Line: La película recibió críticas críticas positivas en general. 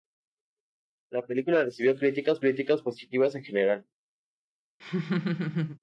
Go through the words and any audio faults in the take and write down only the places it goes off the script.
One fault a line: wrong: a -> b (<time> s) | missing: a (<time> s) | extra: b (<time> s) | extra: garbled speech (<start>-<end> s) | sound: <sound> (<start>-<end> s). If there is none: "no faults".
sound: laugh (4.8-5.8 s)